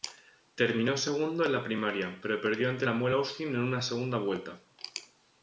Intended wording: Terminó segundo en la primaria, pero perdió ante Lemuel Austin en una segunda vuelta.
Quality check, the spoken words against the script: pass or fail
pass